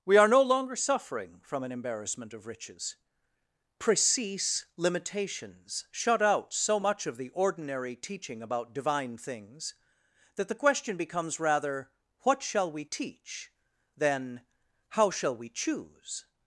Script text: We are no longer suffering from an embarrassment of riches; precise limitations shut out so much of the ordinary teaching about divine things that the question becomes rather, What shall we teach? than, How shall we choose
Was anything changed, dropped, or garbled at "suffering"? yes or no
no